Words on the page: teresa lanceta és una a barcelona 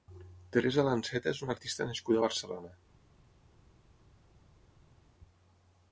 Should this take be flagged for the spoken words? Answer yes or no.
yes